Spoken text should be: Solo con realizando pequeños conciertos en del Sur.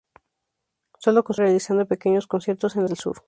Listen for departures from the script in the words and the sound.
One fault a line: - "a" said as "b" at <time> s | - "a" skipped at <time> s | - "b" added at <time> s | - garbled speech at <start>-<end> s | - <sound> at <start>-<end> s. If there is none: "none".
none